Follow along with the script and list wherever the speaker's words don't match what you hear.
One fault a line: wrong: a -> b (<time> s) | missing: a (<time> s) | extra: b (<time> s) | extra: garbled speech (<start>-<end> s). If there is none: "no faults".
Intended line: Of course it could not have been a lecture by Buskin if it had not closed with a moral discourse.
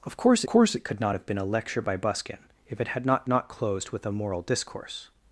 extra: course (0.5 s)
extra: not (3.3 s)